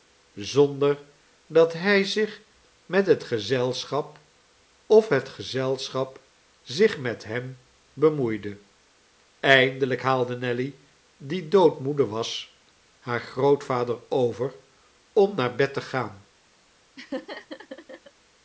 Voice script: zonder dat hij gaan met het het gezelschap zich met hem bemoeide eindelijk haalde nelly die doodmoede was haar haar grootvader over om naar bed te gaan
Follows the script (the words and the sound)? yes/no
no